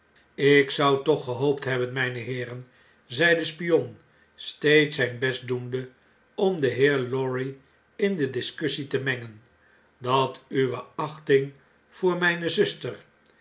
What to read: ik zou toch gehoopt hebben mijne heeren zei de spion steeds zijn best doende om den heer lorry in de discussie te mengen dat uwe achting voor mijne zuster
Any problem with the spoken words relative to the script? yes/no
no